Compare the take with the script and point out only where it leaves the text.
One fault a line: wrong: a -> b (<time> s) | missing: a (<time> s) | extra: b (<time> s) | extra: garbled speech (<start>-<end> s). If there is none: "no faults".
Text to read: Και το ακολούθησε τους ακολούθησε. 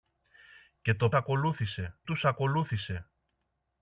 no faults